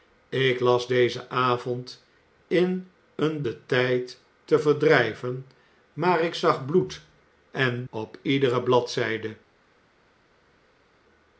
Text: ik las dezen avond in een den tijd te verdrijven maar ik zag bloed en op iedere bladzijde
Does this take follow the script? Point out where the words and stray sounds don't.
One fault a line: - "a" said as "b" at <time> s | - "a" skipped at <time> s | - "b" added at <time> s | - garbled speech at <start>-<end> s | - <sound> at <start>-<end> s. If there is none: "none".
none